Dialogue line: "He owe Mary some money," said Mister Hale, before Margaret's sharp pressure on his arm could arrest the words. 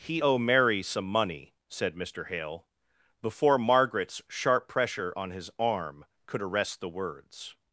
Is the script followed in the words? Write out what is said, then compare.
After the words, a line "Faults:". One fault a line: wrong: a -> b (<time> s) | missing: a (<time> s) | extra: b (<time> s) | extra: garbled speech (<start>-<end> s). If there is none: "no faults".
"He owe Mary some money," said Mister Hale, before Margaret's sharp pressure on his arm could arrest the words.
Faults:
no faults